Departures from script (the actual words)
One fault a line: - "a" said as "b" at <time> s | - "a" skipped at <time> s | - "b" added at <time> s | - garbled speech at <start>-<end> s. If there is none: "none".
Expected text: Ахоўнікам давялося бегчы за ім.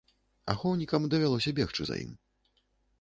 none